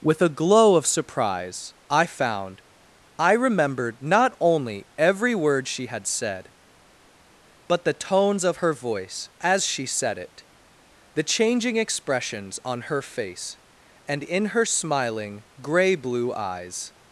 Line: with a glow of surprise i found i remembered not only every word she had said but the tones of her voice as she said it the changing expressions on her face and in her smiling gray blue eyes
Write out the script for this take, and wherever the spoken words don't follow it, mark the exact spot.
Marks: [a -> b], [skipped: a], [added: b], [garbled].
with a glow of surprise i found i remembered not only every word she had said but the tones of her voice as she said it the changing expressions on her face and in her smiling gray blue eyes